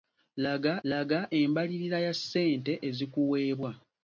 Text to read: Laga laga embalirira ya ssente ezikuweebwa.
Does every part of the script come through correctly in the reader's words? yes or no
yes